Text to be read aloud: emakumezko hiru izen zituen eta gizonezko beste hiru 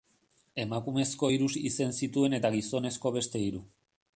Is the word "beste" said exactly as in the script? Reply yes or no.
yes